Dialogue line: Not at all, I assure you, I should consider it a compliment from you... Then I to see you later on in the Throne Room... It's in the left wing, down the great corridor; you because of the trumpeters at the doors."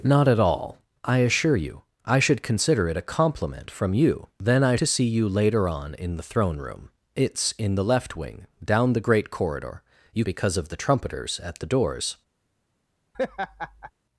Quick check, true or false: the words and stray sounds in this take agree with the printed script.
false